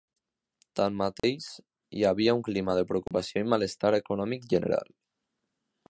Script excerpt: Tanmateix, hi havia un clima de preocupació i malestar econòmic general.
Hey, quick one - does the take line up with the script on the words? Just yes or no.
yes